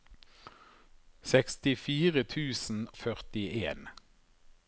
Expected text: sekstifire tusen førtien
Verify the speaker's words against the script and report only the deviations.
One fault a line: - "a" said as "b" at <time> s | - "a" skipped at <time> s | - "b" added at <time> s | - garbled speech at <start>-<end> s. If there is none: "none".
none